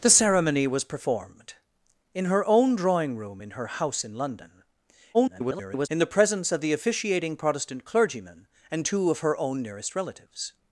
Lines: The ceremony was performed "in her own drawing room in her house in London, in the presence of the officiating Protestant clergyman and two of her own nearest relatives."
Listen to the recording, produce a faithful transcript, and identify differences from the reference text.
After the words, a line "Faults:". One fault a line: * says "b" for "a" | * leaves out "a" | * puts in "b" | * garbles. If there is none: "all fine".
The ceremony was performed "in her own drawing room in her house in London, [garbled] in the presence of the officiating Protestant clergyman and two of her own nearest relatives."
Faults:
* garbles